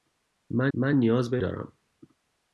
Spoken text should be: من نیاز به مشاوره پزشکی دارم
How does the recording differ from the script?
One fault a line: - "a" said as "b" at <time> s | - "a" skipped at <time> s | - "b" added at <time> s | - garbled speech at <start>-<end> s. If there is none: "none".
- "من" added at 0.7 s
- "مشاوره پزشکی" skipped at 1.4 s